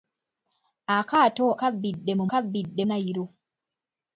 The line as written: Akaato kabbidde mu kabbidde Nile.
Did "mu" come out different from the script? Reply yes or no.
no